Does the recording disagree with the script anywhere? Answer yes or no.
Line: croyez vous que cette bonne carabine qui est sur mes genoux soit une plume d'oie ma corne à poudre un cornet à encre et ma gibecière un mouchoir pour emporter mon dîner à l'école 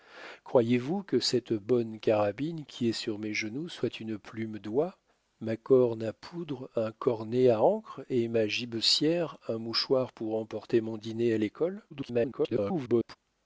yes